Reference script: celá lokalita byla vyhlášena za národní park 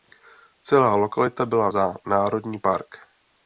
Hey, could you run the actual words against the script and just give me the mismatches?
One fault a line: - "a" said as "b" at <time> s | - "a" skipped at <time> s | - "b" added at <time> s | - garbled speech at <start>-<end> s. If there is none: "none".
- "vyhlášena" skipped at 1.7 s